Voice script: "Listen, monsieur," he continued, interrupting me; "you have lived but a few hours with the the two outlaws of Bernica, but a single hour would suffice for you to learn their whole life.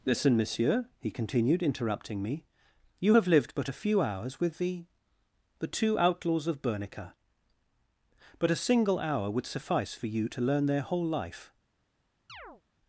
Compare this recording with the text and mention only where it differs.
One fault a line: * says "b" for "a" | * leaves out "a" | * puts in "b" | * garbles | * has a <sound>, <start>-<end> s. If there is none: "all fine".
* has a chirp, 12.3-12.6 s